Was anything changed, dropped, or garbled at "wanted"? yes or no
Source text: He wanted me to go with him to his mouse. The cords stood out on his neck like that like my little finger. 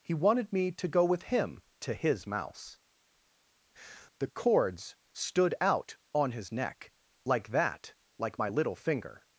no